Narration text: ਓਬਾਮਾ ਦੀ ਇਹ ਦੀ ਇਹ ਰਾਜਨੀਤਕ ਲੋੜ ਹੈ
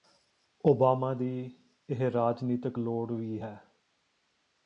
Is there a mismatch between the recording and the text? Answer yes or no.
yes